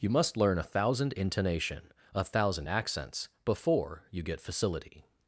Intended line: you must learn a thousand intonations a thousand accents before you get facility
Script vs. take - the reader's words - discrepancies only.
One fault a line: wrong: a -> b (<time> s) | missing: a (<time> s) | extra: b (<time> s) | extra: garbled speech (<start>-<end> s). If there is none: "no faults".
wrong: intonations -> intonation (1.1 s)